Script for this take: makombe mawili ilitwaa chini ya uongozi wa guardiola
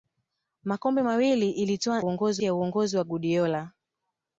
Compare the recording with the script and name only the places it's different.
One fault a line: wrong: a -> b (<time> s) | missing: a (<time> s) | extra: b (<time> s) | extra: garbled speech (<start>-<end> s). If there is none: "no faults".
wrong: chini -> uongozi (2.0 s)